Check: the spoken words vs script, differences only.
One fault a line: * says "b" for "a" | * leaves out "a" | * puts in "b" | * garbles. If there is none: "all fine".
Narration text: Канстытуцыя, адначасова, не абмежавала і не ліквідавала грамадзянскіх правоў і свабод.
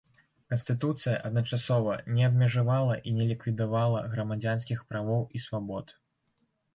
all fine